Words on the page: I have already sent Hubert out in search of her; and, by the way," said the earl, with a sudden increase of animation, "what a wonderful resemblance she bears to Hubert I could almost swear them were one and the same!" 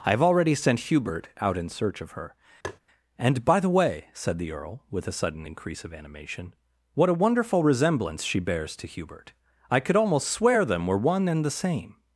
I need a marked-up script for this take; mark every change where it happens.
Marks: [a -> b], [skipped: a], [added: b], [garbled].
I have already sent Hubert out in search of her; and, by the way," said the earl, with a sudden increase of animation, "what a wonderful resemblance she bears to Hubert I could almost swear them were one and the same!"